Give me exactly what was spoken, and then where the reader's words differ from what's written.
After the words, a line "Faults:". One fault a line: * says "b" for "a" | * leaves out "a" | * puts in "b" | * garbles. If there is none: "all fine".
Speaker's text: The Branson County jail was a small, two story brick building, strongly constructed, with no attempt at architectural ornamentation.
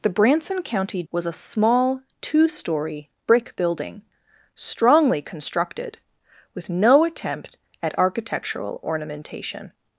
The Branson County was a small, two story brick building, strongly constructed, with no attempt at architectural ornamentation.
Faults:
* leaves out "jail"